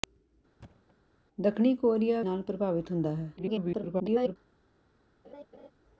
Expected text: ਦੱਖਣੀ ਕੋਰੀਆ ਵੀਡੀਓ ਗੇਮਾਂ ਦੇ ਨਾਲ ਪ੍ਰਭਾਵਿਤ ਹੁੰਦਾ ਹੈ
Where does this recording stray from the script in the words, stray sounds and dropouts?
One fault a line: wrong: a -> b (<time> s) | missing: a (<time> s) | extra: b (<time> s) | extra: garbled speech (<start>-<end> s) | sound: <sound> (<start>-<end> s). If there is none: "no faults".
sound: thud (0.6-1.0 s)
missing: ਵੀਡੀਓ ਗੇਮਾਂ ਦੇ (2.2 s)
extra: garbled speech (3.4-4.4 s)
sound: laugh (5.2-5.7 s)